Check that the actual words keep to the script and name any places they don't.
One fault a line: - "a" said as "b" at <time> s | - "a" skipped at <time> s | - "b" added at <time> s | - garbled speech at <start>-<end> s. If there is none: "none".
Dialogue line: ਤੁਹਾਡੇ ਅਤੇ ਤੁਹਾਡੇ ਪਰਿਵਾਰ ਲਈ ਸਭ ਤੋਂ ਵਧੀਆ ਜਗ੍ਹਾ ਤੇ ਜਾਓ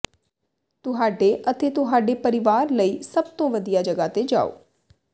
none